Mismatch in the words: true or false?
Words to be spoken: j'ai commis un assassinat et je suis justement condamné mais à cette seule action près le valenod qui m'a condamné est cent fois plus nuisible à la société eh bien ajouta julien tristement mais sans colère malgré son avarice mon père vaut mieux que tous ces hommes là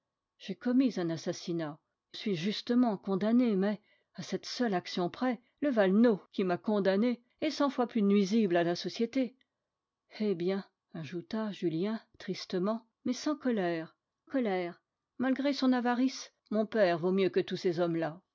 true